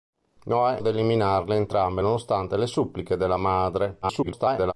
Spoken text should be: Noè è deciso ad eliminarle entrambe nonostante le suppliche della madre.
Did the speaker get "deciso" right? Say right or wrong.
wrong